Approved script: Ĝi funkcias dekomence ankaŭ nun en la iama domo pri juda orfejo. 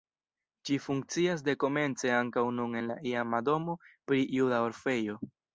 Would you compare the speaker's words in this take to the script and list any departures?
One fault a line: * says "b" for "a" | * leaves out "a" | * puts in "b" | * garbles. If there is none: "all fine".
all fine